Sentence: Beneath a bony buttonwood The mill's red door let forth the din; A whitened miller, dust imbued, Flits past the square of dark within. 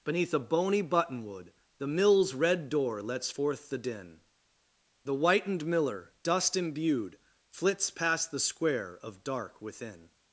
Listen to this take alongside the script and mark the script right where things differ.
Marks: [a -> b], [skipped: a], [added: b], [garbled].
Beneath a bony buttonwood The mill's red door [let -> lets] forth the din; [A -> The] whitened miller, dust imbued, Flits past the square of dark within.